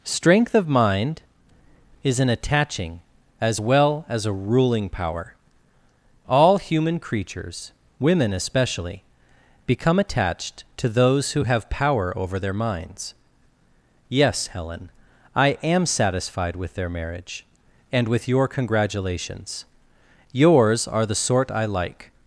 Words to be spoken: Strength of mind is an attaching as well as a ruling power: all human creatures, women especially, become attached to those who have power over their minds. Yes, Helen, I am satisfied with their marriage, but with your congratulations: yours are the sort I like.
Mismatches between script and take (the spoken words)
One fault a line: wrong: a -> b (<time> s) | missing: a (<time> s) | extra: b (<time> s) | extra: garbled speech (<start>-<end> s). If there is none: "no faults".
wrong: but -> and (17.9 s)